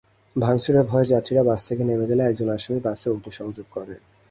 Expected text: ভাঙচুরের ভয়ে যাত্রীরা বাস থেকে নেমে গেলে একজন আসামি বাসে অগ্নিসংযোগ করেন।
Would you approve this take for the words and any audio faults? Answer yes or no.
yes